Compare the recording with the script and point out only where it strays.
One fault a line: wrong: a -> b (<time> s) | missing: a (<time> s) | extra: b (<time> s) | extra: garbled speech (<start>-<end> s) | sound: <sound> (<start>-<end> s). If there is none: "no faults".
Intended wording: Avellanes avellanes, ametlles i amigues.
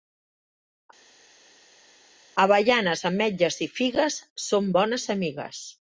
missing: avellanes (3.0 s)
extra: figues són bones (3.8 s)